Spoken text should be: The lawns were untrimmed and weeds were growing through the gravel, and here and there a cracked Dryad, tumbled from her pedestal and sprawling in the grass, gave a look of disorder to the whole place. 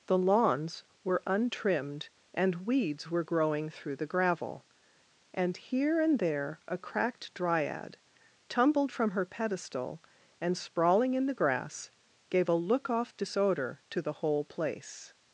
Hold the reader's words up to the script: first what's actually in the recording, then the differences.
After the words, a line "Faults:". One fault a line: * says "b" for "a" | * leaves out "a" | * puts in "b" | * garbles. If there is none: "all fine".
The lawns were untrimmed and weeds were growing through the gravel, and here and there a cracked Dryad, tumbled from her pedestal and sprawling in the grass, gave a look off disorder to the whole place.
Faults:
* says "off" for "of"